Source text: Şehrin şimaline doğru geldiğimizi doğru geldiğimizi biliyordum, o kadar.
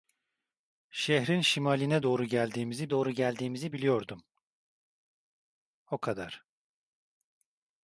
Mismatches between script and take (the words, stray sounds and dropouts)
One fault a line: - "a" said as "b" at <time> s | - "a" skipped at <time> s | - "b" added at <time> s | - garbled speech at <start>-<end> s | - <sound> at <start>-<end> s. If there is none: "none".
none